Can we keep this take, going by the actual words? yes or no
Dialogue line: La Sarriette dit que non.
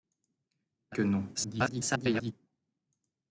no